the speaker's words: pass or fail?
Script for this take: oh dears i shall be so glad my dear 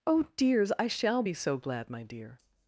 pass